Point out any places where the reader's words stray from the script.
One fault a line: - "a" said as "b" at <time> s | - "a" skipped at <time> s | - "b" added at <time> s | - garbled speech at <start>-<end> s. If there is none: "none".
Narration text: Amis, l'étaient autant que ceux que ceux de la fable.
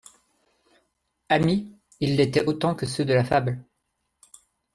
- "ils" added at 2.0 s
- "que ceux" skipped at 3.1 s